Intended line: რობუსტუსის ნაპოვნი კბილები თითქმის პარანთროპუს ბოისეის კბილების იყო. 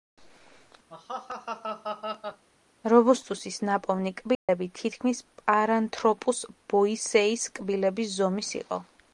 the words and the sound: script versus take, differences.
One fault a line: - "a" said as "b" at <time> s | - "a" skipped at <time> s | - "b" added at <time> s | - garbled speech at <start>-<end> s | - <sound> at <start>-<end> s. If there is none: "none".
- laugh at 0.9-2.4 s
- dropout at 4.3-4.5 s
- "ზომის" added at 8.2 s